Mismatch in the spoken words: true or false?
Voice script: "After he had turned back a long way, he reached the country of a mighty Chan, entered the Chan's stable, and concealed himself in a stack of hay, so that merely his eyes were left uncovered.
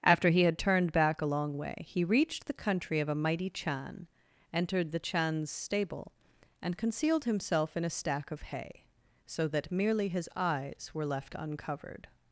false